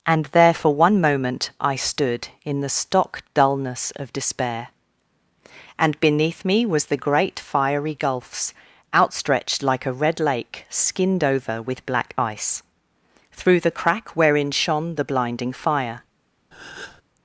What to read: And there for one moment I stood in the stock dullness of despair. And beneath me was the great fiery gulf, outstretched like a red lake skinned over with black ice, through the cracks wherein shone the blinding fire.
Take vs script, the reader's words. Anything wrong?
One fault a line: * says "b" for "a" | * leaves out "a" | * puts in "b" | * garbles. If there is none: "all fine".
* says "gulfs" for "gulf"
* says "crack" for "cracks"